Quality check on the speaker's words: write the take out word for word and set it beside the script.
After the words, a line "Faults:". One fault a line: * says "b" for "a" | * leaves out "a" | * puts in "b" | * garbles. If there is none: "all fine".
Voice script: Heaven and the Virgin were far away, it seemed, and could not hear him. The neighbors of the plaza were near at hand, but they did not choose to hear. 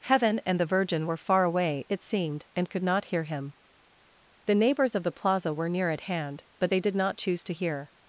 Heaven and the Virgin were far away, it seemed, and could not hear him. The neighbors of the plaza were near at hand, but they did not choose to hear.
Faults:
all fine